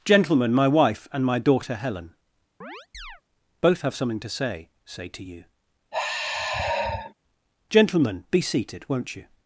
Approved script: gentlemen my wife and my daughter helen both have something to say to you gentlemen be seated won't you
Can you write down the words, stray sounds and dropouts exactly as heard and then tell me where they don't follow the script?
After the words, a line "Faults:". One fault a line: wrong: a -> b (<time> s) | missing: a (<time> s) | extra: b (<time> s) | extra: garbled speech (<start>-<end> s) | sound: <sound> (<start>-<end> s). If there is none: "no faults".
gentlemen my wife and my daughter helen both have something to say say to you gentlemen be seated won't you
Faults:
sound: chirp (2.6-3.2 s)
extra: say (4.8 s)
sound: sigh (5.9-7.1 s)